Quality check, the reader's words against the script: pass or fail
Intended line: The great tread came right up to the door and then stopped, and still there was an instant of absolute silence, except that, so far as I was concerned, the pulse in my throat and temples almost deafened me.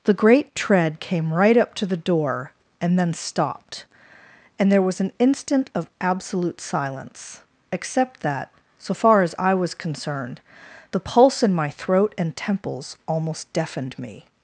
fail